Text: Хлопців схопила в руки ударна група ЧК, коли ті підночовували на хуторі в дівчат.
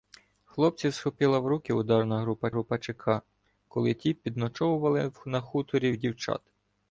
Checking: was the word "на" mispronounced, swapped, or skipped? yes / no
no